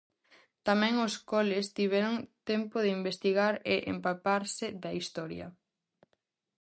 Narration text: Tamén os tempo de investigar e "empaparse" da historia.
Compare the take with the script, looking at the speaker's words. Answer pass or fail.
fail